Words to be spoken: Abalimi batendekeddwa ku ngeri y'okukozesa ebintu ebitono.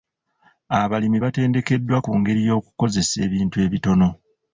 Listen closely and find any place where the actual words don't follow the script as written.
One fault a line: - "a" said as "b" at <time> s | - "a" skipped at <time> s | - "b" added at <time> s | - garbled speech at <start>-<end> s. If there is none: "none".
none